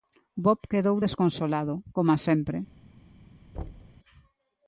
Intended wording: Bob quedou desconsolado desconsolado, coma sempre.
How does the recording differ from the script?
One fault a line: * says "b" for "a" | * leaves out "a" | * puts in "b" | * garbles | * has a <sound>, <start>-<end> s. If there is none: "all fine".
* leaves out "desconsolado"
* has a thud, 3.5-4.0 s